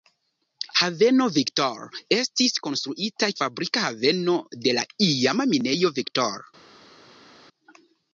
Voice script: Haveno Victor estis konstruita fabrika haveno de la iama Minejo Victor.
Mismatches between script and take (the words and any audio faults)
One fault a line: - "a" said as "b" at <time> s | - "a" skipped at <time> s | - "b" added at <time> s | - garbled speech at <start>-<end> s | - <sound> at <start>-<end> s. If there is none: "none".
none